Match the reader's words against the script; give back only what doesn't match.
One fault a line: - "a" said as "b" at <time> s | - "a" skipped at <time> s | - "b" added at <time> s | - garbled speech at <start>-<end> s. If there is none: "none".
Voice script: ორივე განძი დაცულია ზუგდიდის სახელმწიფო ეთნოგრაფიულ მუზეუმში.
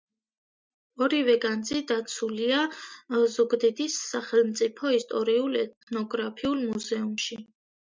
- "ისტორიულ" added at 5.0 s